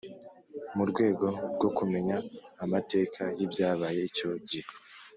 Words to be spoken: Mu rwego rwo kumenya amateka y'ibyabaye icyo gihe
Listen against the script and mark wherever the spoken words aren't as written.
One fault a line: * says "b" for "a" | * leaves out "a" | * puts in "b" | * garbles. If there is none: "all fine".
all fine